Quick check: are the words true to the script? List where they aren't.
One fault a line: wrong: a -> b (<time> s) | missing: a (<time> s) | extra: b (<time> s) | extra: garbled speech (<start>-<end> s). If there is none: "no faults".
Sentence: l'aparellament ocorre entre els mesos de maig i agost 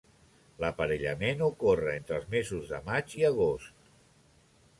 no faults